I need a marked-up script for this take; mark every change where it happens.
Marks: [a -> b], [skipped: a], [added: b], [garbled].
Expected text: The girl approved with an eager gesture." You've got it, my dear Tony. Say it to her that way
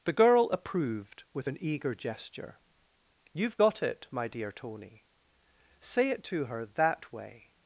The girl approved with an eager gesture." You've got it, my dear Tony. Say it to her that way